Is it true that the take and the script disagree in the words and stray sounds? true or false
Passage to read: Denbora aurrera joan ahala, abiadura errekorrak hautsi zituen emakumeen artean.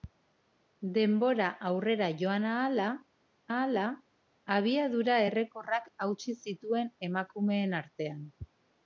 true